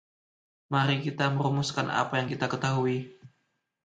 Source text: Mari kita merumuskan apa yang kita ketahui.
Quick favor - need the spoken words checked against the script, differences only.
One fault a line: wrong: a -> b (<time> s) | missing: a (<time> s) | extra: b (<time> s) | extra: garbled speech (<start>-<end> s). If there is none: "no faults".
no faults